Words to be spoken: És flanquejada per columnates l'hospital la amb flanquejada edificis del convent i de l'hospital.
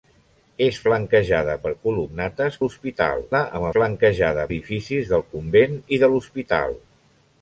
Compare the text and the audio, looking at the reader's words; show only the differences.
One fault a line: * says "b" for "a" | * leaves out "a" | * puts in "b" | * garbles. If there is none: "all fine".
all fine